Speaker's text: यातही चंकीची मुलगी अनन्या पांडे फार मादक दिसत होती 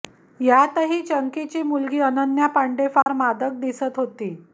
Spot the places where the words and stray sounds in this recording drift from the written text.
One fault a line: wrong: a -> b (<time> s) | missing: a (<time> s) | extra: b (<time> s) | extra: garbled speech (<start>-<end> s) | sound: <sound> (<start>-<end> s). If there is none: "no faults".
sound: dropout (3.0-3.1 s)